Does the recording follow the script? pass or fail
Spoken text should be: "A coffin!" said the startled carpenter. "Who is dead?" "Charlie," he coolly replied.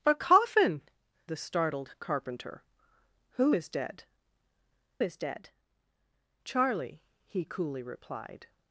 fail